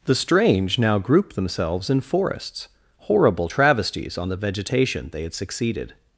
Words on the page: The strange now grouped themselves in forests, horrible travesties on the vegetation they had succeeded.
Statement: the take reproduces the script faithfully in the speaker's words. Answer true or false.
true